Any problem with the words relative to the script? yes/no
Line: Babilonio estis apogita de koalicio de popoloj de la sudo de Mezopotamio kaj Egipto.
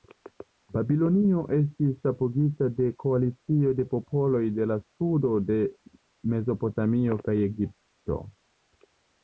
no